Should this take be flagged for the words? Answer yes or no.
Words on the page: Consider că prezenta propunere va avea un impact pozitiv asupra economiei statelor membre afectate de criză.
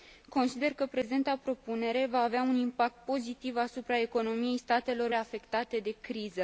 yes